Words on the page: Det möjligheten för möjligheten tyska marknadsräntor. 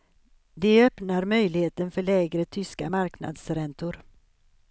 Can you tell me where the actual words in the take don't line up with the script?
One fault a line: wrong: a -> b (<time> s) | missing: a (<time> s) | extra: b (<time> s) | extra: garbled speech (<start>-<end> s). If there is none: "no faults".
extra: öppnar (0.8 s)
wrong: möjligheten -> lägre (2.0 s)